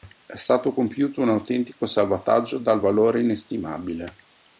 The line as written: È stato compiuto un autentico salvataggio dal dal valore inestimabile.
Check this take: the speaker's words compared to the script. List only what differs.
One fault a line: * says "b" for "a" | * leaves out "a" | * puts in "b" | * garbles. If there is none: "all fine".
* leaves out "dal"